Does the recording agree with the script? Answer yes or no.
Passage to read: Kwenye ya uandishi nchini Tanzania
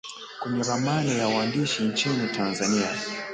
no